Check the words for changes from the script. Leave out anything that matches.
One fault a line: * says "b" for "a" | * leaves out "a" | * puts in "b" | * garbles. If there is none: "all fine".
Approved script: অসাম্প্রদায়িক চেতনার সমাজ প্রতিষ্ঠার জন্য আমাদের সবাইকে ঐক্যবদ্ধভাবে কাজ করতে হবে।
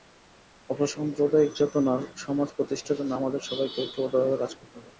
all fine